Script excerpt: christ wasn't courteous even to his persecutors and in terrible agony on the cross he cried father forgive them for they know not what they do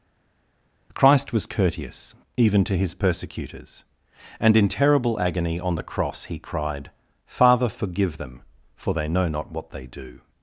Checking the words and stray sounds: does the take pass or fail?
fail